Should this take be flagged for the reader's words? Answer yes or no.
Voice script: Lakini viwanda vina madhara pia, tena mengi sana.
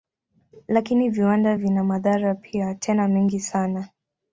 no